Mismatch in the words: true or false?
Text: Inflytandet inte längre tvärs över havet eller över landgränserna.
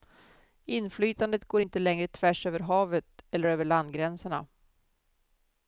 true